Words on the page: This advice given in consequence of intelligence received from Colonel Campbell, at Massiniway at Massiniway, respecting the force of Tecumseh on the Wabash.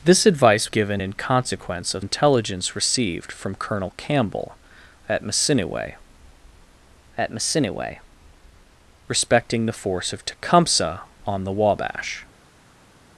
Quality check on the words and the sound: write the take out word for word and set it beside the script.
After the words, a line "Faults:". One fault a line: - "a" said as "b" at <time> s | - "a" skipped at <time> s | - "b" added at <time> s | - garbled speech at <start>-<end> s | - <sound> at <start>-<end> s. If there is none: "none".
This advice given in consequence of intelligence received from Colonel Campbell, at Massiniway at Massiniway, respecting the force of Tecumseh on the Wabash.
Faults:
none